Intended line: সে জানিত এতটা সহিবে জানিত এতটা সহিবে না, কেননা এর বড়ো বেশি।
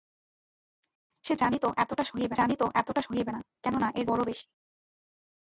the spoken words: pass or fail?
pass